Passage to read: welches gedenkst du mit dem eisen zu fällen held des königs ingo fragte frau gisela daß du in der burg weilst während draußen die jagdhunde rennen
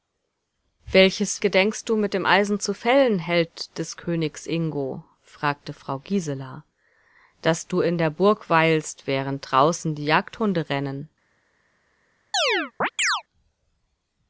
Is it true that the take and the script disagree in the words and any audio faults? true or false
true